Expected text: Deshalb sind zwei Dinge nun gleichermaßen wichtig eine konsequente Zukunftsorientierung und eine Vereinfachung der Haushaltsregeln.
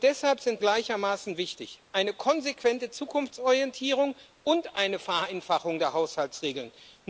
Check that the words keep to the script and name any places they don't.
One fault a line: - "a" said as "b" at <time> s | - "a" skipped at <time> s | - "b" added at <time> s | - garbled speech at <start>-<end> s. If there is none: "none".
- "zwei Dinge nun" skipped at 0.6 s